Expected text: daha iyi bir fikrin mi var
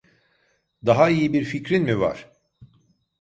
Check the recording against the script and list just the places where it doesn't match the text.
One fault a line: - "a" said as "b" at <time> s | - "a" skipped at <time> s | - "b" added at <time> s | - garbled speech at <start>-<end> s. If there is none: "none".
none